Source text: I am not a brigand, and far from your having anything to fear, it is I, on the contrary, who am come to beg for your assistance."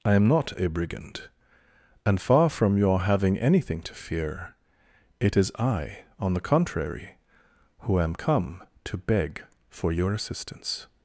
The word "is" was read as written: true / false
true